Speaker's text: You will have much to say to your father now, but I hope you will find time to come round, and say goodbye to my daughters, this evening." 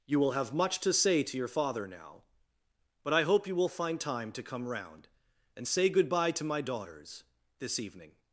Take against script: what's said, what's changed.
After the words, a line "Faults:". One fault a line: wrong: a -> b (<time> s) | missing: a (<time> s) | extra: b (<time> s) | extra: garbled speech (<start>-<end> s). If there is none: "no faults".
You will have much to say to your father now, but I hope you will find time to come round, and say goodbye to my daughters, this evening."
Faults:
no faults